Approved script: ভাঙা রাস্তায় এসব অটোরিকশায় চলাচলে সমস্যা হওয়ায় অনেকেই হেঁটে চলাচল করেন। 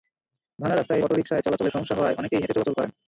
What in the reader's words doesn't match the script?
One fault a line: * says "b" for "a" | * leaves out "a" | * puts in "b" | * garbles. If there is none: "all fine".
* leaves out "এসব"